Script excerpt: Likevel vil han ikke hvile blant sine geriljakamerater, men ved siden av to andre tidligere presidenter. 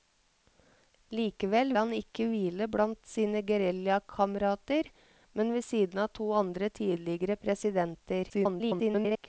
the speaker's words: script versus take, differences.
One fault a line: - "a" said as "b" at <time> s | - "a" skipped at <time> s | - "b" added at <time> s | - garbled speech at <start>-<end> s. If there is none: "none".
- "vil" skipped at 1.8 s
- garbled speech at 8.3-9.3 s